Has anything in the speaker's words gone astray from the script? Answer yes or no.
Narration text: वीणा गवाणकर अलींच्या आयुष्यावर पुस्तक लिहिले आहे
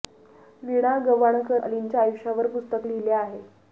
no